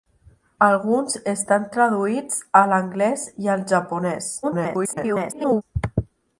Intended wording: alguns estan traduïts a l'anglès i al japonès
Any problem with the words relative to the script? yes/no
yes